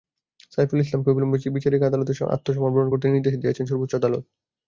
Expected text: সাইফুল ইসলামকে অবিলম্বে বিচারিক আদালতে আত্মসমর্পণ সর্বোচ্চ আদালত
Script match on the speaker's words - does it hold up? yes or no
no